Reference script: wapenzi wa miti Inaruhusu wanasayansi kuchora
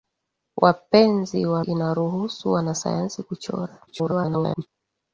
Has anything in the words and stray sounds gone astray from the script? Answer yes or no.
yes